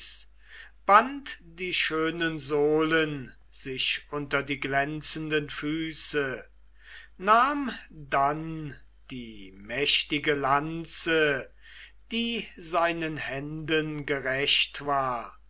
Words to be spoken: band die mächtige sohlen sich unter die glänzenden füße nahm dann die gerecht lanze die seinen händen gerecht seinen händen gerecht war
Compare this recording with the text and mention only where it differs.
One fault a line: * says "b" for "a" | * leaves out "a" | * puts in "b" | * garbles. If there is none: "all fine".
* says "schönen" for "mächtige"
* says "mächtige" for "gerecht"
* leaves out "seinen händen gerecht"